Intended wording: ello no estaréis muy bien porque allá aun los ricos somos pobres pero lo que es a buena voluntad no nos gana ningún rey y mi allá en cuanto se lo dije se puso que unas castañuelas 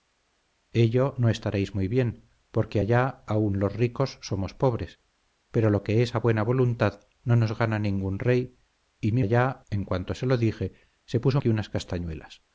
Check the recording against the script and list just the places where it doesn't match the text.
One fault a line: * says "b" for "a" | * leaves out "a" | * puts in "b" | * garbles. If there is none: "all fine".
all fine